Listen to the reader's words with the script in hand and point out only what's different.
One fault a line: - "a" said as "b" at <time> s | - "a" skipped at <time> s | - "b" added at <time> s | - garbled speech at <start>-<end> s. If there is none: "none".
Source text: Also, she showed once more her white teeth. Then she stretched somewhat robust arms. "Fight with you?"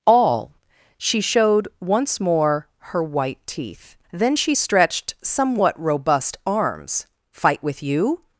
- "Also" said as "All" at 0.1 s